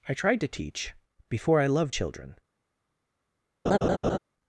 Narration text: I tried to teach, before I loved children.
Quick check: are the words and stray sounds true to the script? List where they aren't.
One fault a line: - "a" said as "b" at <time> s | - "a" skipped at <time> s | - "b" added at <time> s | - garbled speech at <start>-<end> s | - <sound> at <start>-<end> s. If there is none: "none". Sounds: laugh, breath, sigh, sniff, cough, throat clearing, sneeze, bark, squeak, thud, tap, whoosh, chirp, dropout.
- laugh at 3.7-4.2 s